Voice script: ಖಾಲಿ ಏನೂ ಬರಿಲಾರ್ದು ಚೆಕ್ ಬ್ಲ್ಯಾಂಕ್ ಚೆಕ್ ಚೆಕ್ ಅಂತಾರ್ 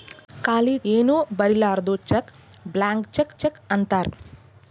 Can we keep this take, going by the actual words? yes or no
yes